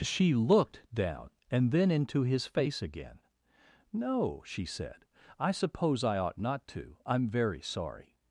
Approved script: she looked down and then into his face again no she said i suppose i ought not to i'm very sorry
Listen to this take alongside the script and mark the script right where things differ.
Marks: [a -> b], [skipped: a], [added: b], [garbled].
she looked down and then into his face again no she said i suppose i ought not to i'm very sorry